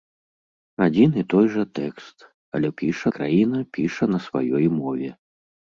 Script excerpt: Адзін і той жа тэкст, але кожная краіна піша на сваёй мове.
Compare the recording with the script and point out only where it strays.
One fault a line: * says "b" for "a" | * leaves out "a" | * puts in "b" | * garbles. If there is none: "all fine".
* says "піша" for "кожная"